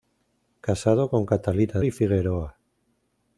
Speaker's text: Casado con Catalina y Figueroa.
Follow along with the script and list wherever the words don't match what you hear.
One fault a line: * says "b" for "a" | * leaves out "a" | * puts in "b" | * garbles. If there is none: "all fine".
all fine